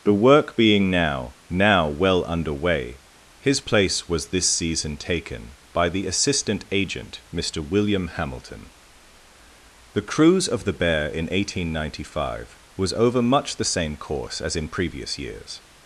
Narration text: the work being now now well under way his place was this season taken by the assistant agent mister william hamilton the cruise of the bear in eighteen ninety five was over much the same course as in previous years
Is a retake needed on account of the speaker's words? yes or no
no